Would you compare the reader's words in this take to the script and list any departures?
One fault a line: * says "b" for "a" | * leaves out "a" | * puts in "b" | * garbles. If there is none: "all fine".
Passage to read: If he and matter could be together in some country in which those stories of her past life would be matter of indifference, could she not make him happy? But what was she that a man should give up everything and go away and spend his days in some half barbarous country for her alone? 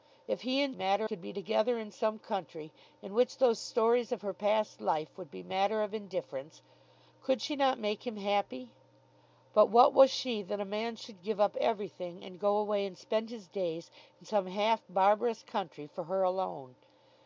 all fine